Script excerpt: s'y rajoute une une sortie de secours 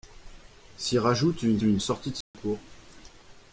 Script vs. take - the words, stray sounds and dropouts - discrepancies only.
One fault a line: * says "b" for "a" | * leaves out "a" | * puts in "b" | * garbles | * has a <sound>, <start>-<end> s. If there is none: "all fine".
* has a dropout, 2.2-2.3 s